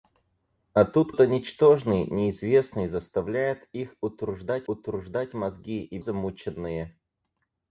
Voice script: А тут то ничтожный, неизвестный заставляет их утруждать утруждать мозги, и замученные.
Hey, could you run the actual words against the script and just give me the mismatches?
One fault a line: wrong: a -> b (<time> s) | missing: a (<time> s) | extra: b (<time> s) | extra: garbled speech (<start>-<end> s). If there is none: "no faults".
no faults